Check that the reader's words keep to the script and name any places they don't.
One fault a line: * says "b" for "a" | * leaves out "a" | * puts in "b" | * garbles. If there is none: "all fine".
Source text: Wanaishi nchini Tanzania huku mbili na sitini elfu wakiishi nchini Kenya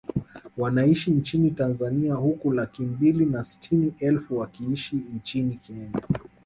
* puts in "laki"